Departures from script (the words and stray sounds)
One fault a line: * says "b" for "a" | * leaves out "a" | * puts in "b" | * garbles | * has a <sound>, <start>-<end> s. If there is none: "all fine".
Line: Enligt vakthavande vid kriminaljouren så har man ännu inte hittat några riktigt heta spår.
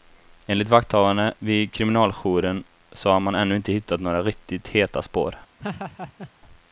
* has a laugh, 5.6-6.3 s